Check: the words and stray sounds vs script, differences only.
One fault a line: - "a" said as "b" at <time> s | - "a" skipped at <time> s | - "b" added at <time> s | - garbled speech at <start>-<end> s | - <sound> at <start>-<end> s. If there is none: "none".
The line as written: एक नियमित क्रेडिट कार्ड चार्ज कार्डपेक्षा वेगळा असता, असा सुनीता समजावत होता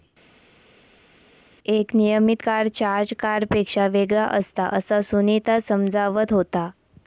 - "क्रेडिट" skipped at 2.4 s